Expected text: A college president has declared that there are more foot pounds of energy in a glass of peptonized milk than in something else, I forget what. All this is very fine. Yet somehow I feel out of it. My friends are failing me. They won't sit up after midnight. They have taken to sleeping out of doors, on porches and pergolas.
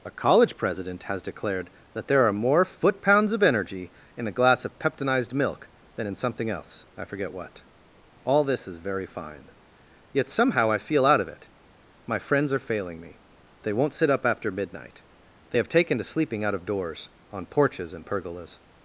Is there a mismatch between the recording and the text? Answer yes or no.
no